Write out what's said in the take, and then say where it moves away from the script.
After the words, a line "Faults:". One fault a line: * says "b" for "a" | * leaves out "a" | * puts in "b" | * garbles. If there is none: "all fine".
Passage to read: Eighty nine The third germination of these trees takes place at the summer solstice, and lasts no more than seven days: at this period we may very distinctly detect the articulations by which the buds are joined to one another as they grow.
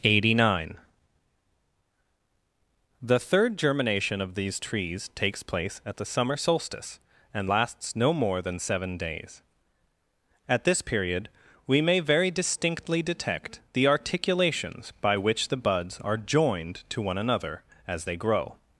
Eighty nine The third germination of these trees takes place at the summer solstice, and lasts no more than seven days: at this period we may very distinctly detect the articulations by which the buds are joined to one another as they grow.
Faults:
all fine